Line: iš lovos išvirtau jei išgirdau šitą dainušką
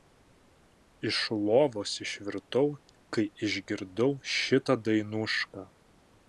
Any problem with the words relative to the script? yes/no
yes